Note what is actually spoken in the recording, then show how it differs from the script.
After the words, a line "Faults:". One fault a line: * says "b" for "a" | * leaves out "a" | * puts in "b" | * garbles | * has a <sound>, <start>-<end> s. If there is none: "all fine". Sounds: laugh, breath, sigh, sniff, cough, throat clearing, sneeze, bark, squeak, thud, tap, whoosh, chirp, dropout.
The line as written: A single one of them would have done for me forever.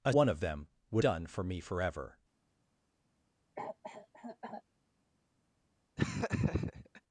A one of them would done for me forever.
Faults:
* leaves out "single"
* leaves out "have"
* has a cough, 3.6-4.6 s
* has a laugh, 6.0-7.0 s